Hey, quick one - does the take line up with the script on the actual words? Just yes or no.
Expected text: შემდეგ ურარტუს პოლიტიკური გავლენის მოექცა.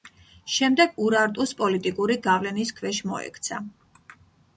no